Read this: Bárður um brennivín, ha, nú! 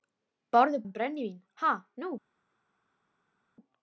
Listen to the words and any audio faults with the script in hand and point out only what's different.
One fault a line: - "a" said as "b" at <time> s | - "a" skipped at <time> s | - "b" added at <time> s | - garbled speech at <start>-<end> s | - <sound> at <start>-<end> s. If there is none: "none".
none